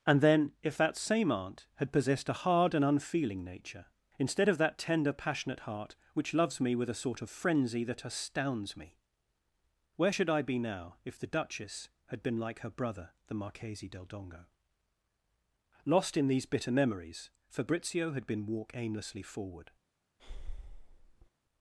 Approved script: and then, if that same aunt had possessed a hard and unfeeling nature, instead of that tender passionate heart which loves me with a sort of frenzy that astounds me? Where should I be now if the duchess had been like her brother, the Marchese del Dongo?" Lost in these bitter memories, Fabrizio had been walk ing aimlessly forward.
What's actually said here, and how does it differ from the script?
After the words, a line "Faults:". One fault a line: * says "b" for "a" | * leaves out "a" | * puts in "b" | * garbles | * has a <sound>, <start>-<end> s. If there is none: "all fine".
and then, if that same aunt had possessed a hard and unfeeling nature, instead of that tender passionate heart which loves me with a sort of frenzy that astounds me? Where should I be now if the duchess had been like her brother, the Marchese del Dongo?" Lost in these bitter memories, Fabrizio had been walk aimlessly forward.
Faults:
* leaves out "ing"
* has a breath, 20.2-21.3 s